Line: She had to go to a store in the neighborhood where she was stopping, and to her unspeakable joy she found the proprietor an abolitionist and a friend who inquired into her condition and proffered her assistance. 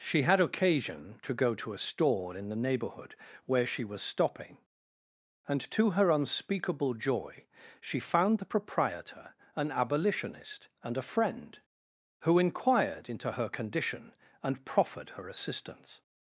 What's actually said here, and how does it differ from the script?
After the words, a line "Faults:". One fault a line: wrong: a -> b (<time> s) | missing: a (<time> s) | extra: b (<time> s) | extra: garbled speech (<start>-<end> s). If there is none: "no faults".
She had occasion to go to a store in the neighborhood where she was stopping, and to her unspeakable joy she found the proprietor an abolitionist and a friend who inquired into her condition and proffered her assistance.
Faults:
extra: occasion (0.4 s)